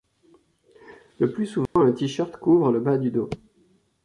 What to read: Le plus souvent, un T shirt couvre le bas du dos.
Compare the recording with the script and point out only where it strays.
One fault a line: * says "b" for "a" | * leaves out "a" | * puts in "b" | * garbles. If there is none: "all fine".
all fine